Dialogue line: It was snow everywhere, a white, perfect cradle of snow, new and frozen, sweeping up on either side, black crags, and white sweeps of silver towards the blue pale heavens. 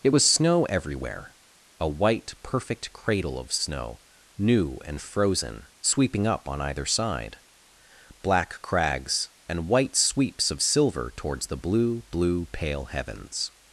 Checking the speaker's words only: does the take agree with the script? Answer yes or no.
no